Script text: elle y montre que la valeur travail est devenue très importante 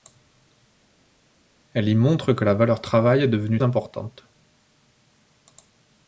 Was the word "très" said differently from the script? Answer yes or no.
yes